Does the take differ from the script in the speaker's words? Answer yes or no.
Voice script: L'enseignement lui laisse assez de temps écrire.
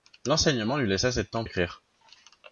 no